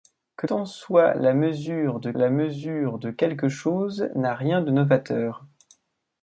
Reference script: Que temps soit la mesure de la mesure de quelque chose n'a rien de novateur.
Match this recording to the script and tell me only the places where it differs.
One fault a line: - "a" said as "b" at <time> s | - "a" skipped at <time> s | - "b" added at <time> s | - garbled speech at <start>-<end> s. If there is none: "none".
none